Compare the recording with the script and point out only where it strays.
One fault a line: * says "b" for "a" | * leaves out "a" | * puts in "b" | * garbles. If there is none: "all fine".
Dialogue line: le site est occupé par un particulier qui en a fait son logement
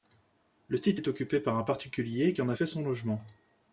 all fine